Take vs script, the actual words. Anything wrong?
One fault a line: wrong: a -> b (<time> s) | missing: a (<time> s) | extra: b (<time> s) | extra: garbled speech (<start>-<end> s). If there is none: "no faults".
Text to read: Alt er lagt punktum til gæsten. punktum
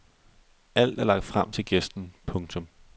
wrong: punktum -> frem (1.2 s)